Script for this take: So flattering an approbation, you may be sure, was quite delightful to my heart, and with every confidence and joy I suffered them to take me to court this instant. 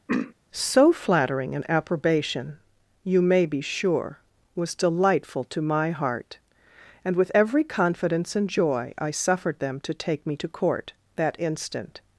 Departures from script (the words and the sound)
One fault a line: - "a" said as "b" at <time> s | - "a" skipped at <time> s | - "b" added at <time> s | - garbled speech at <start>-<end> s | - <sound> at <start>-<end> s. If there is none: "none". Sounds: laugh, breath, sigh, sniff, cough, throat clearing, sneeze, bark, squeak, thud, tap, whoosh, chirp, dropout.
- throat clearing at 0.1-0.3 s
- "quite" skipped at 4.7 s
- "this" said as "that" at 11.2 s